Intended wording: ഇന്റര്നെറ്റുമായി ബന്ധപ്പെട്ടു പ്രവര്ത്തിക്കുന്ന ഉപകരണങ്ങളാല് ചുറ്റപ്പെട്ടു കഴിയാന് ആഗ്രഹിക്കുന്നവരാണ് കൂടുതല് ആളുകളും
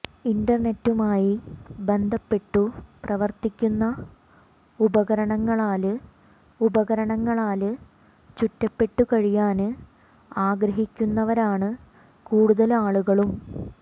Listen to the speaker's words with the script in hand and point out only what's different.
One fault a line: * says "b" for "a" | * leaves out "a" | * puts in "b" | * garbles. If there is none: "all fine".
* puts in "ഉപകരണങ്ങളാല്"